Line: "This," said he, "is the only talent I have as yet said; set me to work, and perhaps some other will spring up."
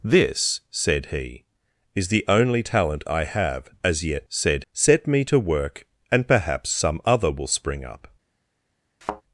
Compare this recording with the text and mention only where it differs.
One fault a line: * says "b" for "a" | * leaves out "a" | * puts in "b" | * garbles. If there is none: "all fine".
all fine